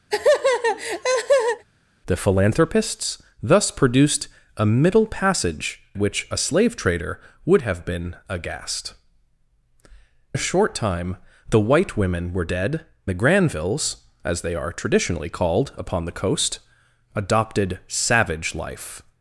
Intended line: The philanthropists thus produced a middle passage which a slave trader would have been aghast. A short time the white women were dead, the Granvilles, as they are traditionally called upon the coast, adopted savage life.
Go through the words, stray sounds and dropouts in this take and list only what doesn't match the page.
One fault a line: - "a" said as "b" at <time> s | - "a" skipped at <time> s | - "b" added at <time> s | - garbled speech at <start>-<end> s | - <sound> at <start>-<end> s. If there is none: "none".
- laugh at 0.1-1.6 s